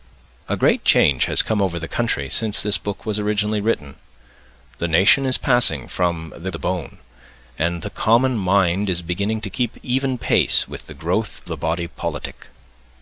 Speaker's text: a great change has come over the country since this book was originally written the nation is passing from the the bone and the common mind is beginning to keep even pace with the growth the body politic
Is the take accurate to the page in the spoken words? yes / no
yes